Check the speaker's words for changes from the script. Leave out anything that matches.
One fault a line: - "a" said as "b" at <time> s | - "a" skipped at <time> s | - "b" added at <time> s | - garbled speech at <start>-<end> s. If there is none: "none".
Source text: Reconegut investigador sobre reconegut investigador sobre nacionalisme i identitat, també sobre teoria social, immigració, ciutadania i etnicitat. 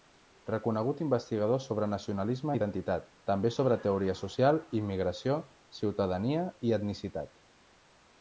- "reconegut investigador sobre" skipped at 1.9 s